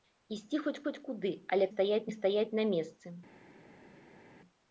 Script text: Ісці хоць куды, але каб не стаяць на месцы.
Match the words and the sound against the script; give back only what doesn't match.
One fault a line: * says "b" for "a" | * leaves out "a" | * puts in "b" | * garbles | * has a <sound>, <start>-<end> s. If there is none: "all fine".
* puts in "хоць"
* says "стаяць" for "каб"